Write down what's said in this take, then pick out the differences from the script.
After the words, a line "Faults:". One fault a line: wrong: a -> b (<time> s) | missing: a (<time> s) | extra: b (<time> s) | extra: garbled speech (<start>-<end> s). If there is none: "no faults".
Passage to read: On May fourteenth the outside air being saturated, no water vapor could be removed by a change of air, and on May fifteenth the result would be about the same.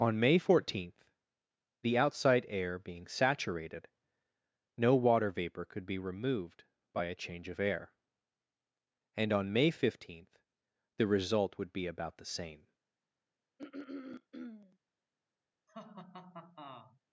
On May fourteenth the outside air being saturated, no water vapor could be removed by a change of air, and on May fifteenth the result would be about the same.
Faults:
no faults